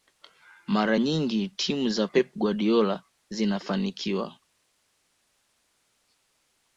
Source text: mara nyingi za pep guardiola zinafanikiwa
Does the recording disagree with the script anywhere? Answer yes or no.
yes